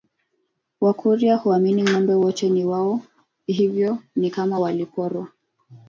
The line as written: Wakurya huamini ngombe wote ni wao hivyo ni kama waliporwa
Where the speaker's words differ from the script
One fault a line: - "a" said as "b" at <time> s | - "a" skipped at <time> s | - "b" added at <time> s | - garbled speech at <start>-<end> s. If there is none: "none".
none